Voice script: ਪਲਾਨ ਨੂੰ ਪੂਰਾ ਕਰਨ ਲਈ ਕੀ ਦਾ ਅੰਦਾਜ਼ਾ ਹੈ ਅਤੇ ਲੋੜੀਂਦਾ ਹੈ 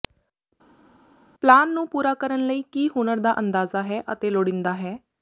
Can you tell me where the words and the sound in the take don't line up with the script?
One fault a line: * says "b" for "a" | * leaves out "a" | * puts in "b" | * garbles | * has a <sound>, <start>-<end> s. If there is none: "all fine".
* puts in "ਹੁਨਰ"